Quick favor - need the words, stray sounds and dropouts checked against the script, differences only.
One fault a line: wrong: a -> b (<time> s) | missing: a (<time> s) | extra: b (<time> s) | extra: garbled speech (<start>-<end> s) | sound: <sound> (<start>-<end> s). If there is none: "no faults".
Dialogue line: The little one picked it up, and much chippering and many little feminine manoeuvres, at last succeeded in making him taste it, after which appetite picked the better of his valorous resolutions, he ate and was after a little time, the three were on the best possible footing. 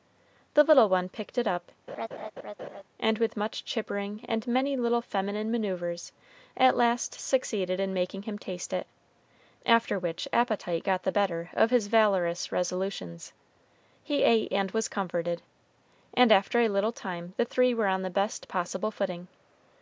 sound: laugh (1.9-2.8 s)
extra: with (3.2 s)
wrong: picked -> got (10.8 s)
extra: comforted and (14.9 s)